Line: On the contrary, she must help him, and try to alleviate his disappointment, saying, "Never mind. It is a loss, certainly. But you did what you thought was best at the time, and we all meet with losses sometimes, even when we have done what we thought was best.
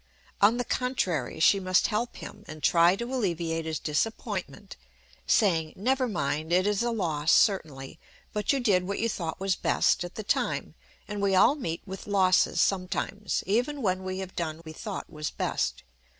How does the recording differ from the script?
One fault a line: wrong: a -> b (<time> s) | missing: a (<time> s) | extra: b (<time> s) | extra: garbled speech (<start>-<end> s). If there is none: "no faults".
missing: what (14.6 s)